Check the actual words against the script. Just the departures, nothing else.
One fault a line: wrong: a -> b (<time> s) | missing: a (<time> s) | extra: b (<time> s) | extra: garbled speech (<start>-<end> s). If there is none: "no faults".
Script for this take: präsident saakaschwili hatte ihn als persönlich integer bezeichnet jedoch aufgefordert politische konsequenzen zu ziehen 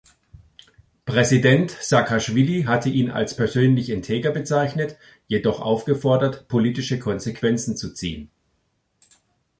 no faults